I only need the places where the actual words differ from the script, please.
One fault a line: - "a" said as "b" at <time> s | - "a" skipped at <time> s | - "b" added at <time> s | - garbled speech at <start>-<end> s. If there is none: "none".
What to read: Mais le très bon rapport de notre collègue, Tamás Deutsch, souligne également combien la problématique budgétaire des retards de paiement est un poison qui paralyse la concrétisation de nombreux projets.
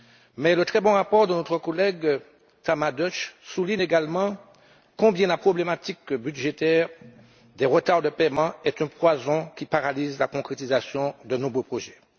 none